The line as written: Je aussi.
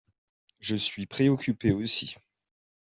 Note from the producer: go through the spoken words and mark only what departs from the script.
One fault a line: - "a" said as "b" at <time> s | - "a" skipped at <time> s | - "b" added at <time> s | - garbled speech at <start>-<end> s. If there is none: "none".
- "suis préoccupé" added at 0.8 s